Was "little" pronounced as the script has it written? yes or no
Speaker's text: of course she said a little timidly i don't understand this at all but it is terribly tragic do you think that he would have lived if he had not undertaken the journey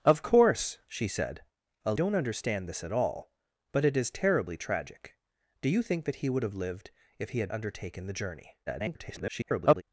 no